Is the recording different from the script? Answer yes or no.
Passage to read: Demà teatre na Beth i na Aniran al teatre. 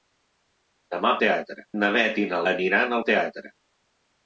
no